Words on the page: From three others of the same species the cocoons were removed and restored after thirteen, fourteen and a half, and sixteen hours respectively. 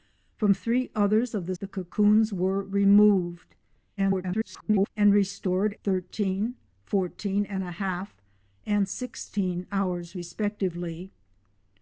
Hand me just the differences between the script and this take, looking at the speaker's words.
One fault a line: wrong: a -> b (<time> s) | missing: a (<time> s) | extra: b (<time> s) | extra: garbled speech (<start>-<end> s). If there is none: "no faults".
missing: same species (1.6 s)
extra: garbled speech (4.0-4.9 s)
missing: after (5.7 s)